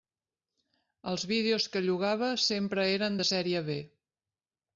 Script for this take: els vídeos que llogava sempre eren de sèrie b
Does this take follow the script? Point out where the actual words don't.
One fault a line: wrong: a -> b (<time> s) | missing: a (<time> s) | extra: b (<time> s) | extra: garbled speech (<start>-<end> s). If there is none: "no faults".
no faults